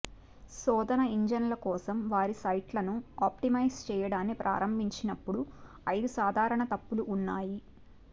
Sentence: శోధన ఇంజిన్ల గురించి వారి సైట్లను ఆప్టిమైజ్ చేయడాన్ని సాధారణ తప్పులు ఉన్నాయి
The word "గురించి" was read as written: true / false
false